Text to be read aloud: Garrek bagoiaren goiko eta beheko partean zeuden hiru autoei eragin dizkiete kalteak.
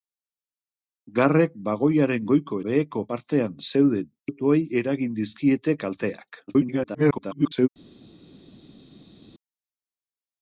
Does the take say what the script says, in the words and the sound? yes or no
no